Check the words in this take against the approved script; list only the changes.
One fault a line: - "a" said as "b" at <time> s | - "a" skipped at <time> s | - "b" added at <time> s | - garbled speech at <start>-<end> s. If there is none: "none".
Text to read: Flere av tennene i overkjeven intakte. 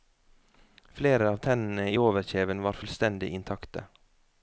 - "var fullstendig" added at 2.7 s